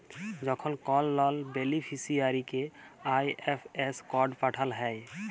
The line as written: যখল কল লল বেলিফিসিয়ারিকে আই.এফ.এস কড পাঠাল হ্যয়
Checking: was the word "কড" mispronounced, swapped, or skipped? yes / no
no